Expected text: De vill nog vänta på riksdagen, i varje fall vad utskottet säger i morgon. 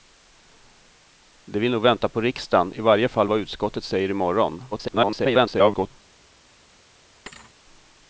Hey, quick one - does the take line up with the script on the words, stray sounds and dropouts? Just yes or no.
no